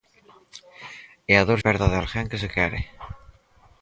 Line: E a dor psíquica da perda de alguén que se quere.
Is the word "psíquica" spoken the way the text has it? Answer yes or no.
no